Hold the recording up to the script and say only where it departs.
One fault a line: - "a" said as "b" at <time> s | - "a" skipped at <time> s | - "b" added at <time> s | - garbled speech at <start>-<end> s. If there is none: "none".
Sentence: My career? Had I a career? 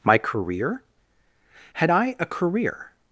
none